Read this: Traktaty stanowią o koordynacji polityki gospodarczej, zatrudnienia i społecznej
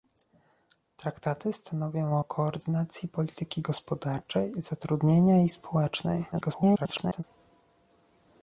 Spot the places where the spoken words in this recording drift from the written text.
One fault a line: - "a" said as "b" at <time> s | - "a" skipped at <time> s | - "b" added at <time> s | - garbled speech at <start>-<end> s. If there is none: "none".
- garbled speech at 6.3-7.2 s